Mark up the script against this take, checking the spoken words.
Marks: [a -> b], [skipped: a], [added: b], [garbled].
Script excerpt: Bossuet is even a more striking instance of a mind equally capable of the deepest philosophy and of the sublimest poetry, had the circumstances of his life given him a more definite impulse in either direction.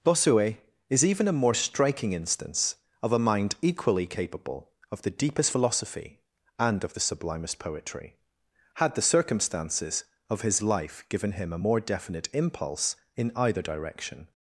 Bossuet is even a more striking instance of a mind equally capable of the deepest philosophy and of the sublimest poetry, had the circumstances of his life given him a more definite impulse in either direction.